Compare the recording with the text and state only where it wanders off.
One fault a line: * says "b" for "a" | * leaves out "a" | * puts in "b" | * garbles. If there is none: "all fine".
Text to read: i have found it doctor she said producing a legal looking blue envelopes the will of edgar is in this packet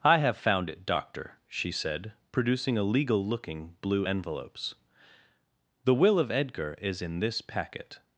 all fine